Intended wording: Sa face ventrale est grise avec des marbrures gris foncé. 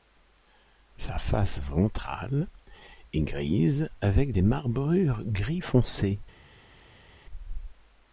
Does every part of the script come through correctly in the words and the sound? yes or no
yes